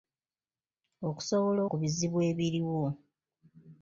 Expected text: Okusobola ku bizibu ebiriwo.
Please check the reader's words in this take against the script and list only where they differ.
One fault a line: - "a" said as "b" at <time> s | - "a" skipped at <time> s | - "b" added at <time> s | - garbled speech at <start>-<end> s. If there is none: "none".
none